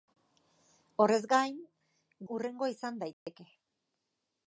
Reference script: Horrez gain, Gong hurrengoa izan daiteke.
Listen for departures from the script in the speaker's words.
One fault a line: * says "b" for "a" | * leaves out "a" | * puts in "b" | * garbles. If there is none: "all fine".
* leaves out "Gong"